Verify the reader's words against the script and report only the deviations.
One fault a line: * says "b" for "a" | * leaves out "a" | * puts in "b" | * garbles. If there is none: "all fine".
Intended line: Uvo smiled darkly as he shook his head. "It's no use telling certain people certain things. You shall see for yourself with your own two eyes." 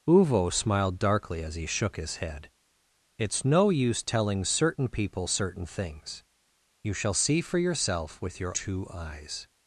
* leaves out "own"